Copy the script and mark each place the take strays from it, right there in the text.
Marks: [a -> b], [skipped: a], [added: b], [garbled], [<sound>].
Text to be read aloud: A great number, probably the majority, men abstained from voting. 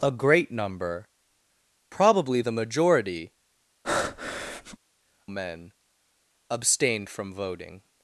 A great number, probably the majority, [breath] men abstained from voting.